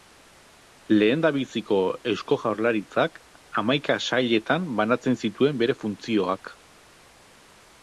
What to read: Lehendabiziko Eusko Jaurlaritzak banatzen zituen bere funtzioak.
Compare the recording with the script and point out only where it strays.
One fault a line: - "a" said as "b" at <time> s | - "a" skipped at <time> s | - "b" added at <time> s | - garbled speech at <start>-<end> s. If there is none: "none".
- "hamaika sailetan" added at 3.6 s